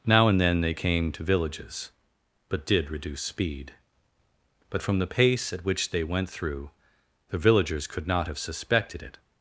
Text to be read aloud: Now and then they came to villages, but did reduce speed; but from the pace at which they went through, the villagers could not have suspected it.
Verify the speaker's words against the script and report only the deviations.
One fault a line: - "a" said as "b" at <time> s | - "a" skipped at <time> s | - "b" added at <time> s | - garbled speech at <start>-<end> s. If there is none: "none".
none